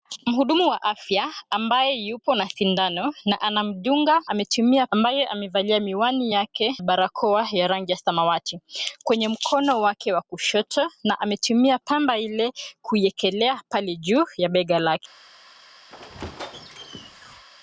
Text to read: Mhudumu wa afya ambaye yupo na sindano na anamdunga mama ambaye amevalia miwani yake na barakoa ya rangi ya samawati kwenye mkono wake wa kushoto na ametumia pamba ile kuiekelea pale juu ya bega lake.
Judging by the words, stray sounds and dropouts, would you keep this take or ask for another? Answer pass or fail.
fail